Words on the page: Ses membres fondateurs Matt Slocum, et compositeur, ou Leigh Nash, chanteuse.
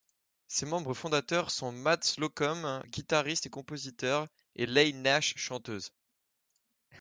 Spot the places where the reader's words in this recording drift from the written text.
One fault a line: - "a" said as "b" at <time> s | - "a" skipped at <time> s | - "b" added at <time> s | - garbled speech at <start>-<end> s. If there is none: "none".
- "sont" added at 1.5 s
- "guitariste" added at 2.9 s
- "ou" said as "et" at 4.5 s